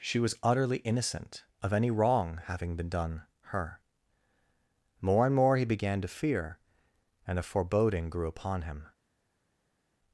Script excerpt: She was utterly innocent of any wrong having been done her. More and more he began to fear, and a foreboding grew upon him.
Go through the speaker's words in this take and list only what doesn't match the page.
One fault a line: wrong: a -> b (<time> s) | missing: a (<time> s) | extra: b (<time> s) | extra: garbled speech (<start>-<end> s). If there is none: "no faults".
no faults